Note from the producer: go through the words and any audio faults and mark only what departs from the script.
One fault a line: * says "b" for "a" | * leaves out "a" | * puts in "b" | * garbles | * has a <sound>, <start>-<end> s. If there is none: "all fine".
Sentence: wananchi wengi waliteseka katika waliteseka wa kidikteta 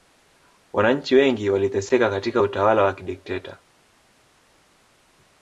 * says "utawala" for "waliteseka"